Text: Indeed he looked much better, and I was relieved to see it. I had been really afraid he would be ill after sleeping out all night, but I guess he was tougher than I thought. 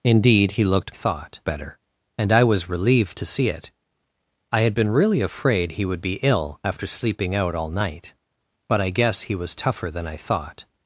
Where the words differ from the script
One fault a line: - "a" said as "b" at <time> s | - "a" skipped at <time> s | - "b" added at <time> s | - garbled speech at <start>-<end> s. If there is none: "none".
- "much" said as "thought" at 0.9 s